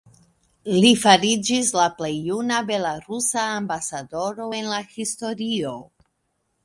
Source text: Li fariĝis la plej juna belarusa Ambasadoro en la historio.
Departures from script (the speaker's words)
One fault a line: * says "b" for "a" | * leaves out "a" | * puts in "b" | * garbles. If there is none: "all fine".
all fine